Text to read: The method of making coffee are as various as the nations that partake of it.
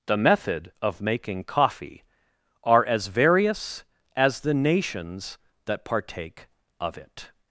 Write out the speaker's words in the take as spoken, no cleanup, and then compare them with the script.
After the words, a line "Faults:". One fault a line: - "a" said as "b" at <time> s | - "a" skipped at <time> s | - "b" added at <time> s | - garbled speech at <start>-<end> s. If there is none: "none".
The method of making coffee are as various as the nations that partake of it.
Faults:
none